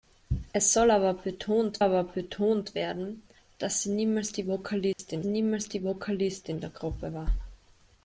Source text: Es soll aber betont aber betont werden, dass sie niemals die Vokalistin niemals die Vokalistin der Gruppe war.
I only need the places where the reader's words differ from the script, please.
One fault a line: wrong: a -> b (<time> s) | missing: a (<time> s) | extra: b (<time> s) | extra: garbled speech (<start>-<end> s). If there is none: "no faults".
no faults